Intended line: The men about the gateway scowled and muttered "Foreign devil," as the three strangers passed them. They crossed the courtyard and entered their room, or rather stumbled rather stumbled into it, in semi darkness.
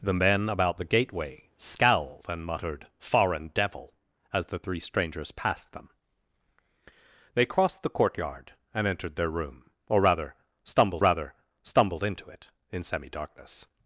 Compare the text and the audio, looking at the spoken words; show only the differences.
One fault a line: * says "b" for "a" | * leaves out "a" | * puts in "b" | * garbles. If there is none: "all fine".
all fine